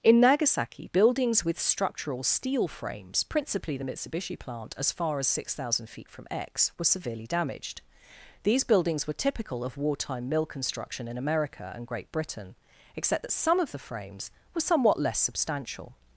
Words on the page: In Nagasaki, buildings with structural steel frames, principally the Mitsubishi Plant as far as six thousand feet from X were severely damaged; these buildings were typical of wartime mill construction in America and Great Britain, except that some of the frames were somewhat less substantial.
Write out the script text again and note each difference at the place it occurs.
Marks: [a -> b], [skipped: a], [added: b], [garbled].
In Nagasaki, buildings with structural steel frames, principally the Mitsubishi Plant as far as six thousand feet from X were severely damaged; these buildings were typical of wartime mill construction in America and Great Britain, except that some of the frames were somewhat less substantial.